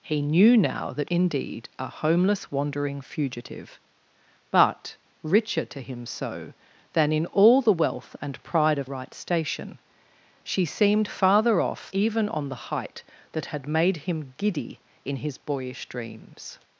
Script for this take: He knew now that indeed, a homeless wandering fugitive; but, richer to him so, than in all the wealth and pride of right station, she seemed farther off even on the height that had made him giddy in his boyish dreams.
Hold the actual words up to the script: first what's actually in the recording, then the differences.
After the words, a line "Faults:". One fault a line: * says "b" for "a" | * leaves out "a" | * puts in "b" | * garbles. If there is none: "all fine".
He knew now that indeed, a homeless wandering fugitive; but, richer to him so, than in all the wealth and pride of right station, she seemed farther off even on the height that had made him giddy in his boyish dreams.
Faults:
all fine